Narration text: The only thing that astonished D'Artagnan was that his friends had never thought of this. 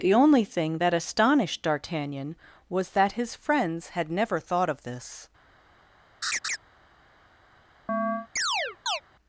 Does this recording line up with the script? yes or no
yes